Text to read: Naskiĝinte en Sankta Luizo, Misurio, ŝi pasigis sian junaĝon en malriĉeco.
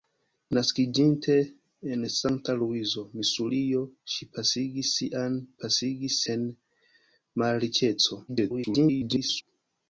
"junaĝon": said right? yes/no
no